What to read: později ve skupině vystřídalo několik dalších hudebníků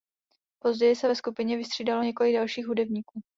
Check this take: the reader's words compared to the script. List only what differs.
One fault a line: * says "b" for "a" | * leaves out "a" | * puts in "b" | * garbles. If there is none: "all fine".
* puts in "se"